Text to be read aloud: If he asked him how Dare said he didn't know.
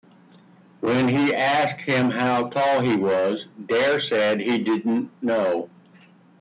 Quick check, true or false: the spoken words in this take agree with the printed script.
false